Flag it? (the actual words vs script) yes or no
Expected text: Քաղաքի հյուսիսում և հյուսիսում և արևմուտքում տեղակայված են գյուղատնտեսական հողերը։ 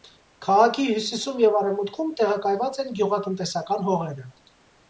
yes